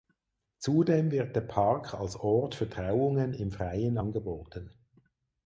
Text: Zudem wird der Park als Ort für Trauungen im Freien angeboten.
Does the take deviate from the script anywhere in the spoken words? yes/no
no